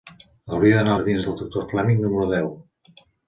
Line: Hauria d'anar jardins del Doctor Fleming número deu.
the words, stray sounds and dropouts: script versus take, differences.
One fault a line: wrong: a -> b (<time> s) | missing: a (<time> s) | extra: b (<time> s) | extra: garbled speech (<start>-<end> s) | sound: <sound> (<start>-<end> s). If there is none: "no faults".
no faults